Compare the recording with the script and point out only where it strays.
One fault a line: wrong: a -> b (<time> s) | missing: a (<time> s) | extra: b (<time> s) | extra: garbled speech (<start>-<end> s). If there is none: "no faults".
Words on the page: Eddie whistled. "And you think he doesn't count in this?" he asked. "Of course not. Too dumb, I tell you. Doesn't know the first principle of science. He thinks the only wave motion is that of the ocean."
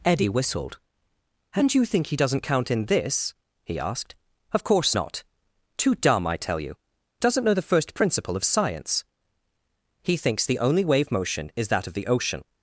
no faults